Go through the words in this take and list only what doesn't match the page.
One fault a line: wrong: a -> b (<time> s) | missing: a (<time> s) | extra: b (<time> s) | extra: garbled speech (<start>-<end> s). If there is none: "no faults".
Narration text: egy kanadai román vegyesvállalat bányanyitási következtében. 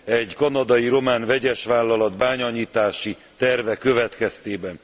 extra: terve (3.4 s)